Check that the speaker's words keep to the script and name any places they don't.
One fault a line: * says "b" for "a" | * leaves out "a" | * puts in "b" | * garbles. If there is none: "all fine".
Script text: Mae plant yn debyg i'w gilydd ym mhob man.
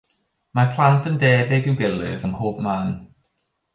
all fine